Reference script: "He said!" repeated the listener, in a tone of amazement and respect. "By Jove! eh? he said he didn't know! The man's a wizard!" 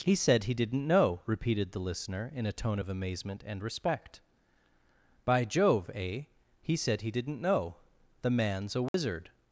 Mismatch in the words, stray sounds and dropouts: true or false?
true